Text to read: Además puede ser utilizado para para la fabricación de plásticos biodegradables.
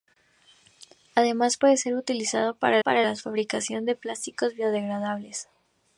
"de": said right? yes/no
yes